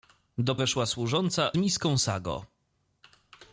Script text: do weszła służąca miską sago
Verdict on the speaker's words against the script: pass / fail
pass